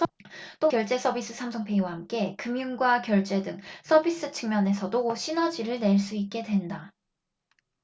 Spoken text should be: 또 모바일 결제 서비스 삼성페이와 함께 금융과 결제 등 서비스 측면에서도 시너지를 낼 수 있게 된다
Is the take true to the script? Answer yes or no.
no